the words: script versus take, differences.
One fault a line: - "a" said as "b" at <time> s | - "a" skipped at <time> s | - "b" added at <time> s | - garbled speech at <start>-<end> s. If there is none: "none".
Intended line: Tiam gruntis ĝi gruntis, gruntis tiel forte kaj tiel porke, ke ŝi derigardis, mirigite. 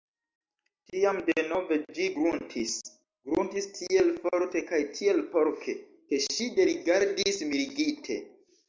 - "gruntis" said as "denove" at 1.3 s